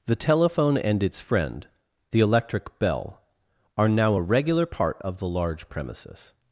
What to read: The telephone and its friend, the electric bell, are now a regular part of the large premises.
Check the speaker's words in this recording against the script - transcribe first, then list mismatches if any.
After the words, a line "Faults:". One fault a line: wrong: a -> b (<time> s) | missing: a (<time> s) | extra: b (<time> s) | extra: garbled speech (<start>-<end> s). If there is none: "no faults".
The telephone and its friend, the electric bell, are now a regular part of the large premises.
Faults:
no faults